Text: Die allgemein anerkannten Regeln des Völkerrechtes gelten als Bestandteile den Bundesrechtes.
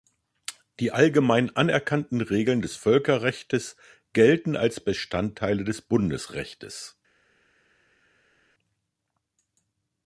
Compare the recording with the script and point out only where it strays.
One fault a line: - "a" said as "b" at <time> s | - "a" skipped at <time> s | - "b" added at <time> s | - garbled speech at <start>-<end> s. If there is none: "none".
- "den" said as "des" at 5.6 s